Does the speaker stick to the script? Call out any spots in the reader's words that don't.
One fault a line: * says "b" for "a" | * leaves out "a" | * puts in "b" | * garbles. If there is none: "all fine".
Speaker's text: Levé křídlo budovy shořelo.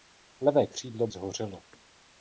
* leaves out "budovy"